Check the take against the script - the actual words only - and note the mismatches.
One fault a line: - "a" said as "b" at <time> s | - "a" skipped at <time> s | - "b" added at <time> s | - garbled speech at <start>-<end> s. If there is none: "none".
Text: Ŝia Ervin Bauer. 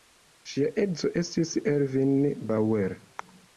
- "edzo estis" added at 0.8 s